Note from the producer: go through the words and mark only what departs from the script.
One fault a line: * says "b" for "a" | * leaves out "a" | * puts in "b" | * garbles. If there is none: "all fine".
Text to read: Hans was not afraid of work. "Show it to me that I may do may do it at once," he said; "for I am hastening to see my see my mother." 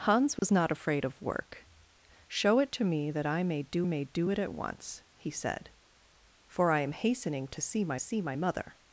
all fine